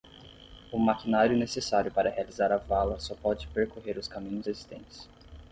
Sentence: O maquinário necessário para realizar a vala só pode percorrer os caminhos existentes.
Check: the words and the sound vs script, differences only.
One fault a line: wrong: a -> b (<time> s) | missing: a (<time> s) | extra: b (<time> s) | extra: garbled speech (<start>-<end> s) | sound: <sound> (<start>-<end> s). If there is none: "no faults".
no faults